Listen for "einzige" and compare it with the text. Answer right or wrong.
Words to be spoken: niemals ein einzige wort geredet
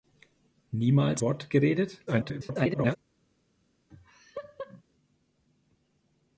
wrong